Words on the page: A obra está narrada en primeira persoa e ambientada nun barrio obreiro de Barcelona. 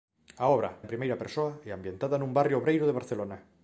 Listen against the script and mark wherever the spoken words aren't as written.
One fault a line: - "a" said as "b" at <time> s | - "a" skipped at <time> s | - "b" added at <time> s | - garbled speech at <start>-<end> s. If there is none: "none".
- "está narrada" skipped at 0.7 s